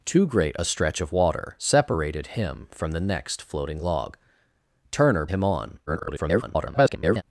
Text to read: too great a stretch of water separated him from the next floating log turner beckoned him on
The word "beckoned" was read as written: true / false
false